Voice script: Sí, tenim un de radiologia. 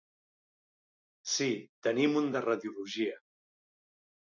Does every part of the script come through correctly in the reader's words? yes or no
yes